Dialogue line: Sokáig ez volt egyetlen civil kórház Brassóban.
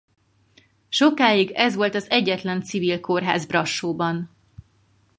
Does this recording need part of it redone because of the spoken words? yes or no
yes